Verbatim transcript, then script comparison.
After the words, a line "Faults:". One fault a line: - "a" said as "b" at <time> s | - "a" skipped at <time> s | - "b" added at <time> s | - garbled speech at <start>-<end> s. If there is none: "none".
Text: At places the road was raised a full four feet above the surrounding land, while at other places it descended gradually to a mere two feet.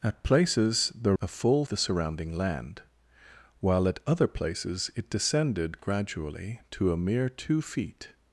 At places the a full the surrounding land, while at other places it descended gradually to a mere two feet.
Faults:
- "road was raised" skipped at 1.1 s
- "four feet above" skipped at 1.6 s